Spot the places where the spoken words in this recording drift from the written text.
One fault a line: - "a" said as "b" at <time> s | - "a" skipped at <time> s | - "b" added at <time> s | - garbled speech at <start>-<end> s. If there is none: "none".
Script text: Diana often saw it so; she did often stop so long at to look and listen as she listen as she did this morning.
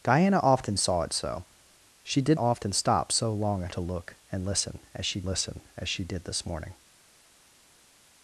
none